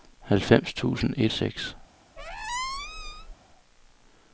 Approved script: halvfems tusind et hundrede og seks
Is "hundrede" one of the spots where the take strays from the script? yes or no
yes